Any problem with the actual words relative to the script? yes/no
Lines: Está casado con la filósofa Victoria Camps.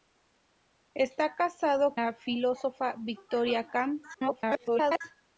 yes